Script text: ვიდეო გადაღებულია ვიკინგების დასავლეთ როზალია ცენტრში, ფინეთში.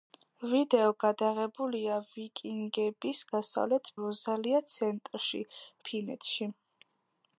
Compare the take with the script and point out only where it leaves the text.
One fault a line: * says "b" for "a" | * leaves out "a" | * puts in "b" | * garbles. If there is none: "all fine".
all fine